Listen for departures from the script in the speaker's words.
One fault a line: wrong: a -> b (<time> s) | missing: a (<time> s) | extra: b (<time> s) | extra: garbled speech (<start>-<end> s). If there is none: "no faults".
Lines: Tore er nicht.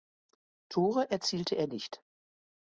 extra: erzielte (1.1 s)